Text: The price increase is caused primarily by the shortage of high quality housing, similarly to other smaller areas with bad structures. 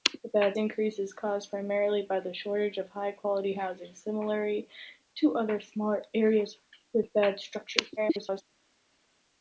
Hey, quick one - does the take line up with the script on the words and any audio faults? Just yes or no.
no